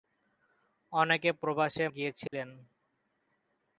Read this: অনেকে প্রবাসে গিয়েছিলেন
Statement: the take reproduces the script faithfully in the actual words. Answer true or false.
true